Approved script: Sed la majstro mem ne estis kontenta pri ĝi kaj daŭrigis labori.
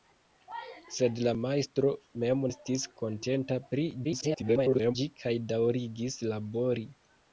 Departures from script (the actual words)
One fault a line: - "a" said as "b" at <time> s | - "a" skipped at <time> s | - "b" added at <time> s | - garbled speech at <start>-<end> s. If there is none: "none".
- "ne" skipped at 2.4 s
- garbled speech at 4.0-5.0 s